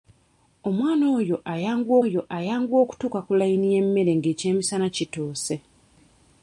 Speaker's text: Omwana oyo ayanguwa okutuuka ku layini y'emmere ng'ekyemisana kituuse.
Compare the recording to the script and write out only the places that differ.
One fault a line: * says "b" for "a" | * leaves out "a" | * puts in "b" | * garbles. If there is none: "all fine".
* puts in "oyo ayanguwa"